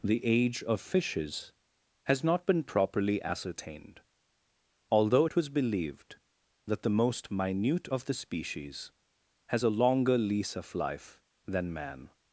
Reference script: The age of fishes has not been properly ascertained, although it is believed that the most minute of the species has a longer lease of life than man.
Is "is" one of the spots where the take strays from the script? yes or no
yes